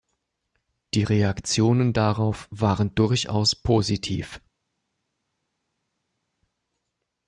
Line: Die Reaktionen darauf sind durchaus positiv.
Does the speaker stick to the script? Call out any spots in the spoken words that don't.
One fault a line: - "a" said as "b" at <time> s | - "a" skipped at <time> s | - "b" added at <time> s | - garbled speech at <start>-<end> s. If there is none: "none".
- "sind" said as "waren" at 2.5 s